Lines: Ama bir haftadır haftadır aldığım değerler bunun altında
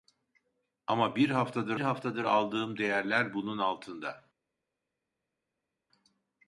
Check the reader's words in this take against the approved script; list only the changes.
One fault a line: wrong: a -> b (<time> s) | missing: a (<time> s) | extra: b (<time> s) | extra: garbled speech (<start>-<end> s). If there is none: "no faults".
no faults